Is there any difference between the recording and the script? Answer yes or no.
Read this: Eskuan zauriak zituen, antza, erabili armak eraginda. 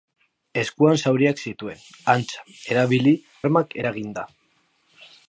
no